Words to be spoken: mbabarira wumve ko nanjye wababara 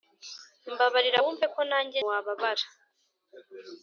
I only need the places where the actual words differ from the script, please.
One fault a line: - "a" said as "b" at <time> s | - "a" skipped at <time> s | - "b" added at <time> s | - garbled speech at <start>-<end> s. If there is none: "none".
none